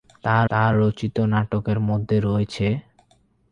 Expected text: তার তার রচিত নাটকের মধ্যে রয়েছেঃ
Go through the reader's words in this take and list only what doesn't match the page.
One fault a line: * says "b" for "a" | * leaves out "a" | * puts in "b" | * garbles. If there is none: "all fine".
all fine